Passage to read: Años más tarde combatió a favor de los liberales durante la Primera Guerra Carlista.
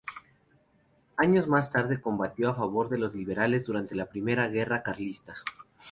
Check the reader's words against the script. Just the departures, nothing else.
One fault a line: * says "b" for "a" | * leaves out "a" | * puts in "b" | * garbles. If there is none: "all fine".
all fine